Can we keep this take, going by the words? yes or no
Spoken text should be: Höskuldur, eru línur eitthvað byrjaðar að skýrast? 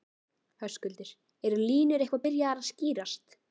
yes